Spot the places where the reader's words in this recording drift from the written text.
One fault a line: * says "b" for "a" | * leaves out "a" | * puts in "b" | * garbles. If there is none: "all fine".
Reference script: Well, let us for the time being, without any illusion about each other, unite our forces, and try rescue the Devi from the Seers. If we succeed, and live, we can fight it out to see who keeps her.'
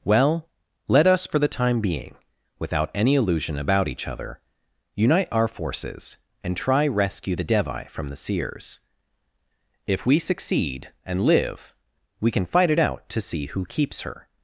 all fine